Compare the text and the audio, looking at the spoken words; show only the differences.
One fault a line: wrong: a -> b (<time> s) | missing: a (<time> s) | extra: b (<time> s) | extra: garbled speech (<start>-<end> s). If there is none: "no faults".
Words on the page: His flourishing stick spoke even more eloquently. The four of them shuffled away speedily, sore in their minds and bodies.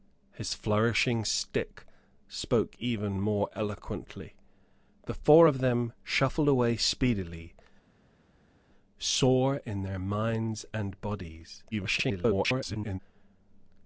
extra: garbled speech (11.7-13.0 s)